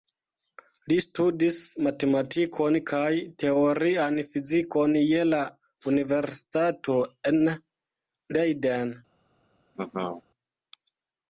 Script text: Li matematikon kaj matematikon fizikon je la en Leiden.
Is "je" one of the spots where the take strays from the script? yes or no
no